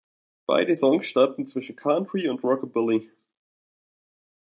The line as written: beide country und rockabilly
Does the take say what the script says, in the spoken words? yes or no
no